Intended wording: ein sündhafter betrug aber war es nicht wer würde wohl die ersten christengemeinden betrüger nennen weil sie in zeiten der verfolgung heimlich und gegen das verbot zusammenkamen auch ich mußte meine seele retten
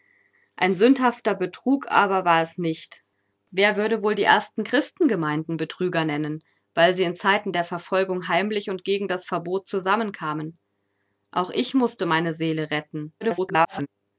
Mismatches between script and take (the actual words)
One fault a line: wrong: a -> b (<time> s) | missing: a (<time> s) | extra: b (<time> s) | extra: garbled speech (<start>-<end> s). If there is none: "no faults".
extra: garbled speech (13.2-13.9 s)